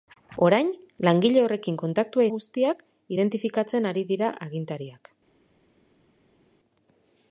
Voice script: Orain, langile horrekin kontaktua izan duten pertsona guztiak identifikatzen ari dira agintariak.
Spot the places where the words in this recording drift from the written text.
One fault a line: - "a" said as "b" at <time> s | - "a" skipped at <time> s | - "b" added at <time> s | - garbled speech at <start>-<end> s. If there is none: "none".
- "izan duten pertsona" skipped at 2.2 s